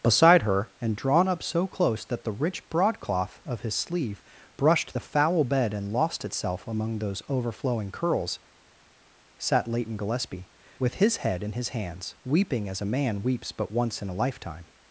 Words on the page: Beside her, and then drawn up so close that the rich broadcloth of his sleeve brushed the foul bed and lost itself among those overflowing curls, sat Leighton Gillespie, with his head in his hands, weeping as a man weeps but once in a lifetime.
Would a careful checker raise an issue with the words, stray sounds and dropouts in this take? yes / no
yes